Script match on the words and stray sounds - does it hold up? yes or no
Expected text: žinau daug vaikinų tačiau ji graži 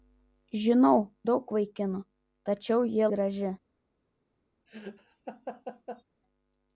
no